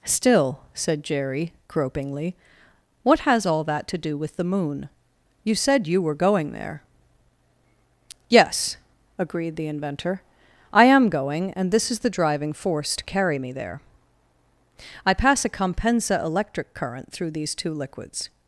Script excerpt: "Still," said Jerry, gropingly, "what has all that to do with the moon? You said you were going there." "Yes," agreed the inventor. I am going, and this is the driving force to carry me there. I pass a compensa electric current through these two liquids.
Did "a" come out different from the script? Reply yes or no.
no